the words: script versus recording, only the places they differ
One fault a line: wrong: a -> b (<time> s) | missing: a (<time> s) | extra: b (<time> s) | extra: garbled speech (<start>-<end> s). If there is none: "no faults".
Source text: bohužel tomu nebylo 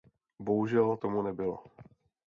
no faults